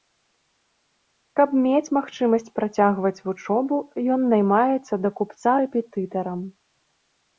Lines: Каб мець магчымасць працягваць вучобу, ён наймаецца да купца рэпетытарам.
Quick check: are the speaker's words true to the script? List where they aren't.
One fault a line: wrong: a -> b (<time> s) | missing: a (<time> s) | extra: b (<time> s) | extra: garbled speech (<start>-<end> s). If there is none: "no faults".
no faults